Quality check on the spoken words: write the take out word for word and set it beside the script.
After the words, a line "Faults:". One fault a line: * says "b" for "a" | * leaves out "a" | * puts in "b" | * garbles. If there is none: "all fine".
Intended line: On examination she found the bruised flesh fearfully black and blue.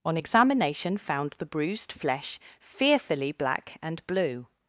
On examination found the bruised flesh fearfully black and blue.
Faults:
* leaves out "she"